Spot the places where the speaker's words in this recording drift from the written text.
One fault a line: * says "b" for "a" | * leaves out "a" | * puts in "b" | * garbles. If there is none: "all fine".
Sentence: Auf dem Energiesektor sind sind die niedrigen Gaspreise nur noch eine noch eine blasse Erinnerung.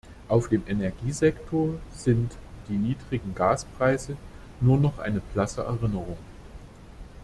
* leaves out "sind"
* leaves out "noch eine"